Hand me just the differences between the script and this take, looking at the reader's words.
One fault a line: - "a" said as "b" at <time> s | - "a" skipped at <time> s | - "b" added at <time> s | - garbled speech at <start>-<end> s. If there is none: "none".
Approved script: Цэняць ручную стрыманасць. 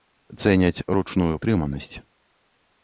none